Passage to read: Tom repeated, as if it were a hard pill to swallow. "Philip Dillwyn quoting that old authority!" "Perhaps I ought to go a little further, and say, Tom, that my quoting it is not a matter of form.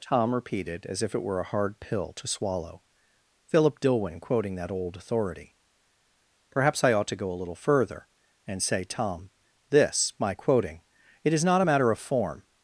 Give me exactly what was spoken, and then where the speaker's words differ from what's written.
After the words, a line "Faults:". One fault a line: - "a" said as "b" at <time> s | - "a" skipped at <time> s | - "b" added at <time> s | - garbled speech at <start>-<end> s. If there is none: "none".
Tom repeated, as if it were a hard pill to swallow. "Philip Dillwyn quoting that old authority!" "Perhaps I ought to go a little further, and say, Tom, this my quoting it is not a matter of form.
Faults:
- "that" said as "this" at 9.7 s